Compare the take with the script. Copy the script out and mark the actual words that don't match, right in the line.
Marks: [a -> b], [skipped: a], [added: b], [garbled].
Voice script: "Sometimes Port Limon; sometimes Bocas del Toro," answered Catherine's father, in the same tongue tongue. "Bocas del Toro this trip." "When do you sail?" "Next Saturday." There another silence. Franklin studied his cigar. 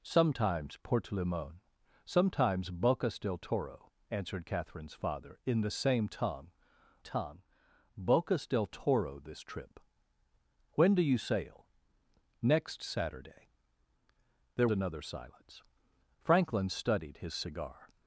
"Sometimes Port Limon; sometimes Bocas del Toro," answered Catherine's father, in the same tongue tongue. "Bocas del Toro this trip." "When do you sail?" "Next Saturday." There another silence. Franklin studied his cigar.